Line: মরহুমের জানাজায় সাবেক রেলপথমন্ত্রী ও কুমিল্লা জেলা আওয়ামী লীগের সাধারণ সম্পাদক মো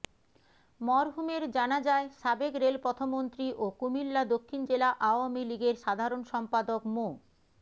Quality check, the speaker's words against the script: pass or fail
fail